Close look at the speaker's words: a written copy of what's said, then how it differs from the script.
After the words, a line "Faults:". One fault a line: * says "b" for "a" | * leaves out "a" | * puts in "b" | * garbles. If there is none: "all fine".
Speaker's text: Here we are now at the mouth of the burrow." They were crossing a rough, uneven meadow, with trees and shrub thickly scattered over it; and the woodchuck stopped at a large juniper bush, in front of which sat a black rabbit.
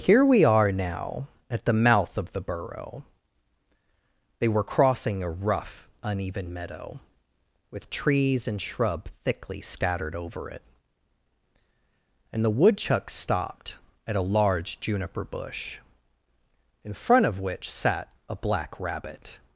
Here we are now at the mouth of the burrow." They were crossing a rough, uneven meadow, with trees and shrub thickly scattered over it; and the woodchuck stopped at a large juniper bush, in front of which sat a black rabbit.
Faults:
all fine